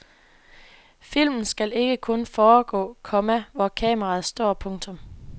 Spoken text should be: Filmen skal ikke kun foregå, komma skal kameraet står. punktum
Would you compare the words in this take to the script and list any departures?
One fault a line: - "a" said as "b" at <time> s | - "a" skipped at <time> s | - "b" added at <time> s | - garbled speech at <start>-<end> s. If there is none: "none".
- "skal" said as "hvor" at 3.5 s